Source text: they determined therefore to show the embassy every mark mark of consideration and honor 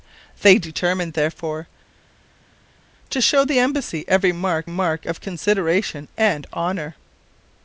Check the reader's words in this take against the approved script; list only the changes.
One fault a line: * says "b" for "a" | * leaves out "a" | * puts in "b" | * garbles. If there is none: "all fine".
all fine